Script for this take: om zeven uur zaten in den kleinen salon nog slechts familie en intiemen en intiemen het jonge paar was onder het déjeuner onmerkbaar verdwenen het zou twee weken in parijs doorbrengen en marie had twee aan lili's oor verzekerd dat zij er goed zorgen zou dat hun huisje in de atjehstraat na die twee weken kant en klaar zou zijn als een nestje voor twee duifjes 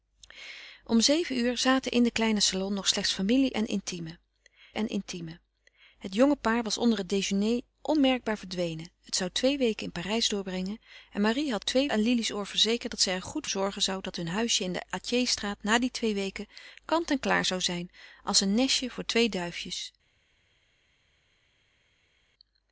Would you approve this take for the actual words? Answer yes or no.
yes